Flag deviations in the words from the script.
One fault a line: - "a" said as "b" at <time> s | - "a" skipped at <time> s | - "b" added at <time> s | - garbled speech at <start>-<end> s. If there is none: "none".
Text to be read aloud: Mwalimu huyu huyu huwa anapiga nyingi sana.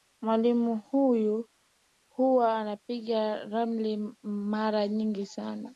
- "huyu" skipped at 1.5 s
- "ramli mara" added at 3.5 s